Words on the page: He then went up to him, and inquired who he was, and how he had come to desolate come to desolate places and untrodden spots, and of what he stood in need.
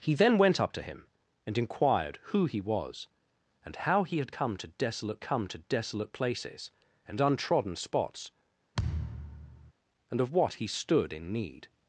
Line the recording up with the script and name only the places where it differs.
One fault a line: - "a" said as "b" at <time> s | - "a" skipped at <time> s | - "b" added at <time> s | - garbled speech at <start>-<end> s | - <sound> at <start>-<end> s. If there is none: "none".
- thud at 8.7-9.7 s